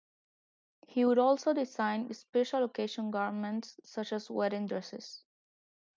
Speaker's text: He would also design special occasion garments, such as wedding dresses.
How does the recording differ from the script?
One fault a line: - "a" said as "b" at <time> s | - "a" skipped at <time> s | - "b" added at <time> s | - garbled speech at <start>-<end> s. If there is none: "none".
none